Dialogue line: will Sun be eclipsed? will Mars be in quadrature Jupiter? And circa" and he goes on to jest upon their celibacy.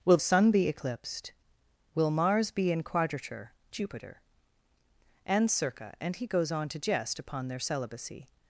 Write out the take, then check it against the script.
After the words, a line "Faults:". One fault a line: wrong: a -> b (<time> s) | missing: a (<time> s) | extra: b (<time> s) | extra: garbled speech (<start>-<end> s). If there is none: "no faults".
will Sun be eclipsed? will Mars be in quadrature Jupiter? And circa" and he goes on to jest upon their celibacy.
Faults:
no faults